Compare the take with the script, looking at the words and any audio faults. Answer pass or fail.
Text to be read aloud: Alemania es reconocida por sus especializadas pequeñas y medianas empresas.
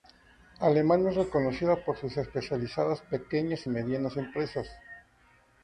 pass